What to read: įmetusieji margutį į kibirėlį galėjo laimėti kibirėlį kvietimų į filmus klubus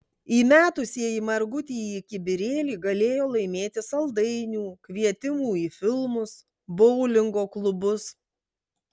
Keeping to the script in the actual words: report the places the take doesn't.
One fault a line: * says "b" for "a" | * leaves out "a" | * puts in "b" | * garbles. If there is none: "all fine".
* says "saldainių" for "kibirėlį"
* puts in "boulingo"